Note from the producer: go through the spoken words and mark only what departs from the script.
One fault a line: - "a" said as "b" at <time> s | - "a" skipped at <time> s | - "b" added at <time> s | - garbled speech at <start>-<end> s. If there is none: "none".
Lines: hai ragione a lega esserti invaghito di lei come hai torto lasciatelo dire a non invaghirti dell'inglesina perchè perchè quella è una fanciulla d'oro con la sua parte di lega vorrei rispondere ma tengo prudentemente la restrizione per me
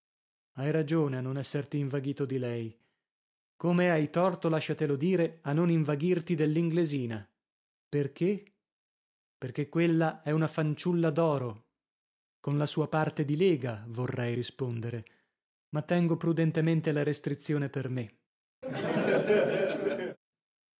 - "lega" said as "non" at 1.2 s